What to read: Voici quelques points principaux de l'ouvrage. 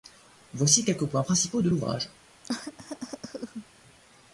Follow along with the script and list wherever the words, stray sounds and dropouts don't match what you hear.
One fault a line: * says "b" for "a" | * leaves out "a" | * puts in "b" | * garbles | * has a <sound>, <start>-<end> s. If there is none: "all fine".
* has a cough, 2.4-3.7 s